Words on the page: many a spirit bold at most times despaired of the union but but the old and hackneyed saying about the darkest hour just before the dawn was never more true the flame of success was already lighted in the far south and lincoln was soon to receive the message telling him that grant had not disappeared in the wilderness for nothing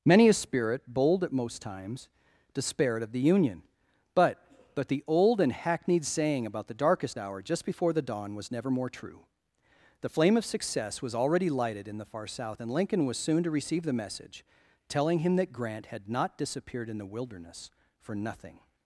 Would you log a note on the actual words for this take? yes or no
no